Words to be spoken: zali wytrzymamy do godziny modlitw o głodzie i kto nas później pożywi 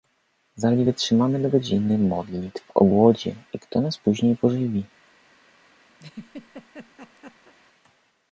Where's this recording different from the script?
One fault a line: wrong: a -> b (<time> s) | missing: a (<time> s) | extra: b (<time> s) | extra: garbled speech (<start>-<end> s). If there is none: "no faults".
no faults